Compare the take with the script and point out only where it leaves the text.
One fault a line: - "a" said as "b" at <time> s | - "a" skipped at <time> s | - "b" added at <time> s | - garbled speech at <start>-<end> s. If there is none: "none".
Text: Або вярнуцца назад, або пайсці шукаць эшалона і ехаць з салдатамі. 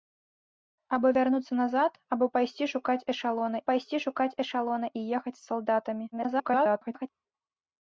- "пайсці шукаць эшалона" added at 3.7 s
- garbled speech at 6.1-7.1 s